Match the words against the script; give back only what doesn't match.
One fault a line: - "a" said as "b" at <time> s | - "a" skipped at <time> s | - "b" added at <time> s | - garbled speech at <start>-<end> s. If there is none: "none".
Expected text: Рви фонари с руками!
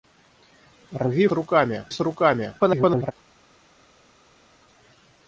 - "фонари" said as "руками" at 1.3 s
- garbled speech at 2.6-3.1 s